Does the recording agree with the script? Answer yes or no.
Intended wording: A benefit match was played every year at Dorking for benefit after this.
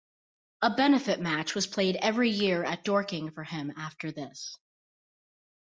no